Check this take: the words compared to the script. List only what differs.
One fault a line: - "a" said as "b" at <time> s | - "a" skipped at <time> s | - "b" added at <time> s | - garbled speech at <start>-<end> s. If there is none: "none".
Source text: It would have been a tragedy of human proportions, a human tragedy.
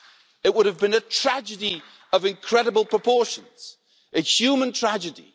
- "human" said as "incredible" at 2.2 s